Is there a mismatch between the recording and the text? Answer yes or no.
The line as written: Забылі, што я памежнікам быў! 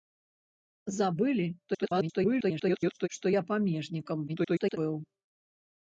yes